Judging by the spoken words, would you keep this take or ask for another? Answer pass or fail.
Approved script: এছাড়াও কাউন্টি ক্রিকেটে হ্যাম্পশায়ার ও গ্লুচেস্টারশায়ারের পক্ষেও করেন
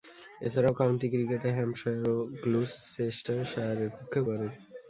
pass